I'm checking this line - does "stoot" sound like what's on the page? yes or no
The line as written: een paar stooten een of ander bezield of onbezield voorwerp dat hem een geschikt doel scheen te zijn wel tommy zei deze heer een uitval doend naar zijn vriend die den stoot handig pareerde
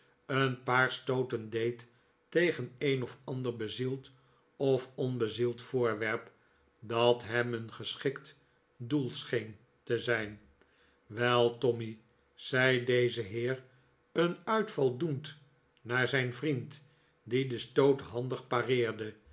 yes